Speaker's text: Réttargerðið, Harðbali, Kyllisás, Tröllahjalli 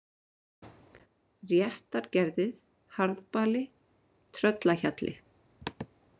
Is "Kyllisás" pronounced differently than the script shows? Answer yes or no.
yes